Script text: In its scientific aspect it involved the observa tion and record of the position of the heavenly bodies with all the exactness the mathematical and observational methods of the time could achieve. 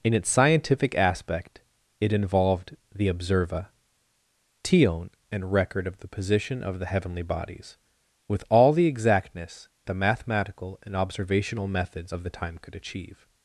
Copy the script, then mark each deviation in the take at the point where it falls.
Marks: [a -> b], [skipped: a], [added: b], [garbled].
In its scientific aspect it involved the observa tion and record of the position of the heavenly bodies with all the exactness the mathematical and observational methods of the time could achieve.